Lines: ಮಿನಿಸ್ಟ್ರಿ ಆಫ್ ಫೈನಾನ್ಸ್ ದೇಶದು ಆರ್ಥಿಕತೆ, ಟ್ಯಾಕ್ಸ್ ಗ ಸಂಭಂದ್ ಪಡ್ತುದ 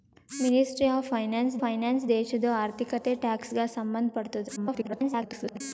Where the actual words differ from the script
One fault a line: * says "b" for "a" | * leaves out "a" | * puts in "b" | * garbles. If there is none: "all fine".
* puts in "ಫೈನಾನ್ಸ್"
* garbles